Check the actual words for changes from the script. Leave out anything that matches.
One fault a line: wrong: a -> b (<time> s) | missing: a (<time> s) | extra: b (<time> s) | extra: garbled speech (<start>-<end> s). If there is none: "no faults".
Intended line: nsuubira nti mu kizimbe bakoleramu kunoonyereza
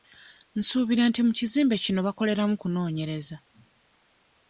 extra: kino (1.8 s)